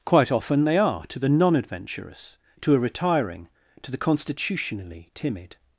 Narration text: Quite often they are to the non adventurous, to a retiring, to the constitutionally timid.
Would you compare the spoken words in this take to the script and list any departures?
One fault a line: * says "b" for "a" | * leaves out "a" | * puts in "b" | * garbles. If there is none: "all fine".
all fine